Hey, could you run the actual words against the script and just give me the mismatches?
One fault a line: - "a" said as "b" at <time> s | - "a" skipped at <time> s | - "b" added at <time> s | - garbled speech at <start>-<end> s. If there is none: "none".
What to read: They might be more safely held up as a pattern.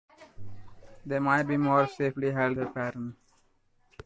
- "up as" skipped at 2.6 s